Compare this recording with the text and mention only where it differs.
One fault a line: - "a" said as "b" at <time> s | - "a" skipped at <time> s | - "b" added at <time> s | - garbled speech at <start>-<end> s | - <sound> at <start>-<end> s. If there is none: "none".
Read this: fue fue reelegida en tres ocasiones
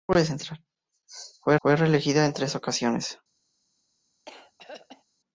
- throat clearing at 4.3-5.0 s